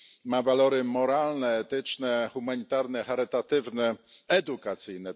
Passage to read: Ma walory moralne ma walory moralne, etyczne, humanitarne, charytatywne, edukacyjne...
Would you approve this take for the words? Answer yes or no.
no